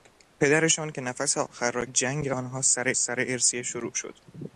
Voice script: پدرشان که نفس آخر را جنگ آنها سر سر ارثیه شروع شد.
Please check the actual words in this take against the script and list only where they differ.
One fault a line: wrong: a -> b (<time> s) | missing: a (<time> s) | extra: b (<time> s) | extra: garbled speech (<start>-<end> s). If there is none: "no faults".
no faults